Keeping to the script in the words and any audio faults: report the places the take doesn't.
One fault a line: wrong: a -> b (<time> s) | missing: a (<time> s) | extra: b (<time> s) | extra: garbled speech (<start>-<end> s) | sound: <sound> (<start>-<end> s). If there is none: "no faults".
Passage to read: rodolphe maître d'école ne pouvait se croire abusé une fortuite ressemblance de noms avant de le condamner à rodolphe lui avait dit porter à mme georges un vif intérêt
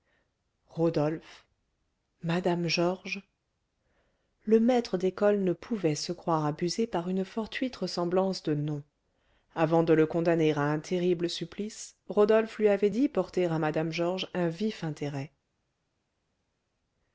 extra: mme georges le (2.2 s)
extra: par (6.9 s)
extra: un terrible supplice (10.6 s)